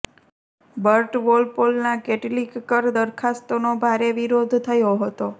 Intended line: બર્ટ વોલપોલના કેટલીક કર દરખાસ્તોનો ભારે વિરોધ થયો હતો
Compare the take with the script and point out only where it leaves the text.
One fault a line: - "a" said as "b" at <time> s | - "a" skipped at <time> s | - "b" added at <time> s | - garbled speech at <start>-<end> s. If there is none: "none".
none